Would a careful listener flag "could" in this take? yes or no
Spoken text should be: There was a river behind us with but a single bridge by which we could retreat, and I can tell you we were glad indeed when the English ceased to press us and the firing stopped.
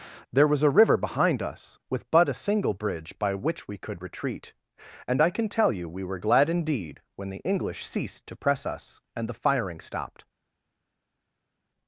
no